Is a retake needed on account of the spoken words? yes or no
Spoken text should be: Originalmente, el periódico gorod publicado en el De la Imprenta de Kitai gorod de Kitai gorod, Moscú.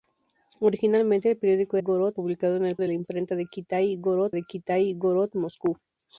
no